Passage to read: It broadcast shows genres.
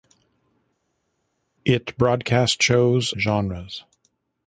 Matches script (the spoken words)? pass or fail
pass